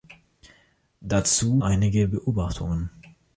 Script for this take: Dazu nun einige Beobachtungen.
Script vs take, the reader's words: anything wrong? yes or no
yes